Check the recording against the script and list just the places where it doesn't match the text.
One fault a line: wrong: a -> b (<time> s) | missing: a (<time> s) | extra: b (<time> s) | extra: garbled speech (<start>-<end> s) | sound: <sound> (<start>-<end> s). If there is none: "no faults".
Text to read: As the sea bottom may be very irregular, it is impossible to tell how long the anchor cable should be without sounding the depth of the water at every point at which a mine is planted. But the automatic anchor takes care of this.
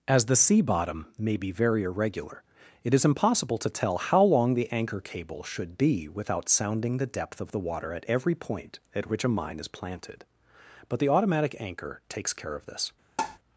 sound: tap (13.2-13.4 s)